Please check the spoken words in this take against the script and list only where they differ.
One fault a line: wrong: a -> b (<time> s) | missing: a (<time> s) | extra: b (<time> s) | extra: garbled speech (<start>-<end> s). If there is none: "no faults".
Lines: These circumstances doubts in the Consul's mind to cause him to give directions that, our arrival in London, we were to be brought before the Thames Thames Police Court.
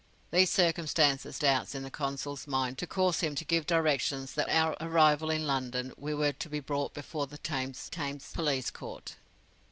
no faults